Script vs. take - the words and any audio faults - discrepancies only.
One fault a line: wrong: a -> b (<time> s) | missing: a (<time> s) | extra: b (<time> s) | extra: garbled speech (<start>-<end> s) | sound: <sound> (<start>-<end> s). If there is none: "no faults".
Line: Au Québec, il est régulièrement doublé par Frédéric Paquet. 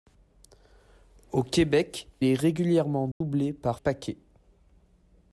missing: il (2.1 s)
sound: dropout (3.1-3.2 s)
missing: Frédéric (3.8 s)